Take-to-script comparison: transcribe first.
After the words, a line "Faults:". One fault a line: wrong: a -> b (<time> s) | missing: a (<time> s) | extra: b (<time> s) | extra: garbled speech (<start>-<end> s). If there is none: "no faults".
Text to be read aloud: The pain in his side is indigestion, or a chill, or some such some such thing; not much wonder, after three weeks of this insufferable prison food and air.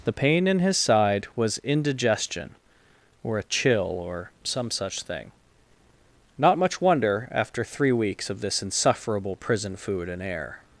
The pain in his side was indigestion, or a chill, or some such thing; not much wonder, after three weeks of this insufferable prison food and air.
Faults:
wrong: is -> was (1.4 s)
missing: some such (5.0 s)